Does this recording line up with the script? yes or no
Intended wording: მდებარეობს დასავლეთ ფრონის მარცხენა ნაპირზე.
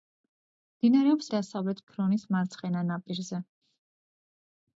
yes